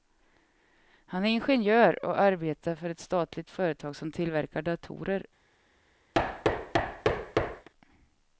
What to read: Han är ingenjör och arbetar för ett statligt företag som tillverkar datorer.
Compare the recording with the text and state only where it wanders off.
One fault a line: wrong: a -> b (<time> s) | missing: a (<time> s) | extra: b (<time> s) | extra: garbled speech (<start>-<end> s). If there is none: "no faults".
no faults